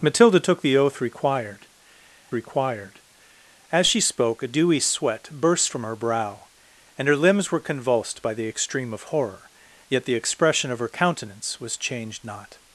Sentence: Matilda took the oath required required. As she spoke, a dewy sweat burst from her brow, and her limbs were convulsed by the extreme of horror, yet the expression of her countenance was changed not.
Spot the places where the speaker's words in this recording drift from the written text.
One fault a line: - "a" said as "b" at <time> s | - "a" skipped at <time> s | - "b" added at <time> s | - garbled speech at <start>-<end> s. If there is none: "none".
none